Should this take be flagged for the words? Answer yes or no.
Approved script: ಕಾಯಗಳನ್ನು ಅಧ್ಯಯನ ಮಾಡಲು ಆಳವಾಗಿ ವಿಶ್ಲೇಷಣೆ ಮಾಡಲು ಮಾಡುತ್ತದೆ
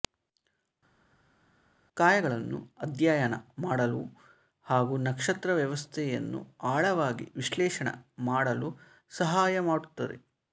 yes